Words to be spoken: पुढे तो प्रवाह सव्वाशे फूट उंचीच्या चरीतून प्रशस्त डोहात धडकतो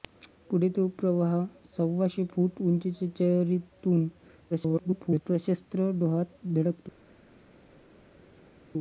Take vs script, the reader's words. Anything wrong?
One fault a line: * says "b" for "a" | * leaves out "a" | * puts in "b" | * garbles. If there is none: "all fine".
* garbles